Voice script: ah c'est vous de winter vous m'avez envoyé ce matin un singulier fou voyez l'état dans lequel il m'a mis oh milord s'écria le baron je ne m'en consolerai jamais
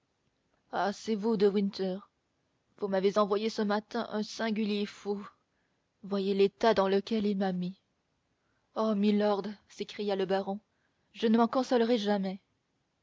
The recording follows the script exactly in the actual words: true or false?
true